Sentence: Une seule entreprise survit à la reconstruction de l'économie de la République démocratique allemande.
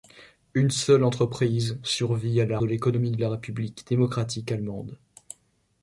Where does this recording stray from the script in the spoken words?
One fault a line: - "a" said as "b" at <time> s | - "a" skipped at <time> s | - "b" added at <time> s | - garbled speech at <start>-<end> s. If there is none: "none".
- "reconstruction" skipped at 2.6 s